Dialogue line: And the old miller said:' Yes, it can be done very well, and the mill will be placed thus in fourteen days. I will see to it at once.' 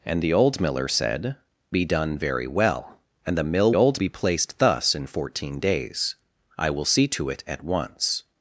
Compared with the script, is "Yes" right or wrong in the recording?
wrong